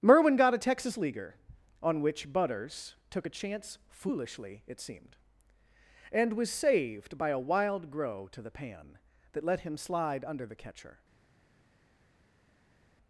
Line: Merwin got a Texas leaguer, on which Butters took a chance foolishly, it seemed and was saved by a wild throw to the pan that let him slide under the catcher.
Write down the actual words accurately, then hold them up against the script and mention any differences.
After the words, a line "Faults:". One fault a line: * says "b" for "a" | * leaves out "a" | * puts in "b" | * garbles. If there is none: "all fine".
Merwin got a Texas leaguer, on which Butters took a chance foolishly, it seemed and was saved by a wild grow to the pan that let him slide under the catcher.
Faults:
* says "grow" for "throw"